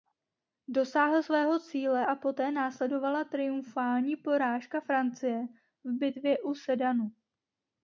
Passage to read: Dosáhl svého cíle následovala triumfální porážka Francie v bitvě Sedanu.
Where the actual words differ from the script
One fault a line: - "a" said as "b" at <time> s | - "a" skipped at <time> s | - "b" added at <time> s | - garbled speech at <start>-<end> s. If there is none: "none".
- "a poté" added at 2.0 s
- "u" added at 6.4 s